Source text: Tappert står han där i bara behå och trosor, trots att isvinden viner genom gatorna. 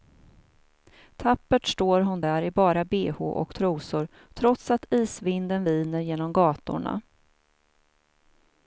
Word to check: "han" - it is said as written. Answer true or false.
false